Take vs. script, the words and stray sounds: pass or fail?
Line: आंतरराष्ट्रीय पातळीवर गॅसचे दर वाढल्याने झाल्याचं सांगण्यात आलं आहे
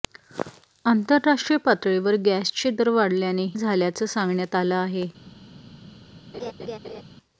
fail